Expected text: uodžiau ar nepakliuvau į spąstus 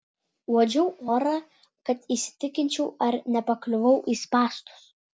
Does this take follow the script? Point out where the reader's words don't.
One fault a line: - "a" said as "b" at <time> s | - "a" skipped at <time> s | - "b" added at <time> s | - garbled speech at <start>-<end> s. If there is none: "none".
- "orą kad įsitikinčiau" added at 1.1 s